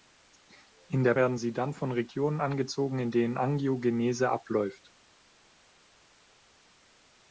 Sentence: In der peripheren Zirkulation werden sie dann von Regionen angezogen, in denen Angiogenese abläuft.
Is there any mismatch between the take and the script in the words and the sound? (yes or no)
yes